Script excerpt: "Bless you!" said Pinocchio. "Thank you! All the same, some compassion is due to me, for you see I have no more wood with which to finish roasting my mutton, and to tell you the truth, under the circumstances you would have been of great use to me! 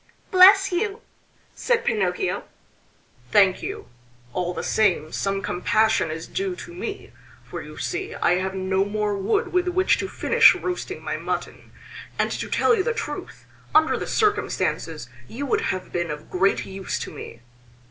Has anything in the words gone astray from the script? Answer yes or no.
no